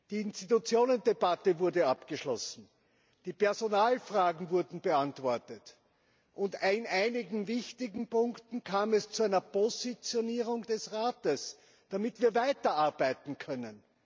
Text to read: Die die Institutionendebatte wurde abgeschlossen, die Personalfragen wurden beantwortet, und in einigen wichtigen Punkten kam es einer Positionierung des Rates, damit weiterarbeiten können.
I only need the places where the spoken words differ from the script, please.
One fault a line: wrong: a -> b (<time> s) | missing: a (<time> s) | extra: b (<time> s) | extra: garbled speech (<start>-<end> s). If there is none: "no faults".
missing: die (0.2 s)
extra: zu (9.1 s)
extra: wir (12.2 s)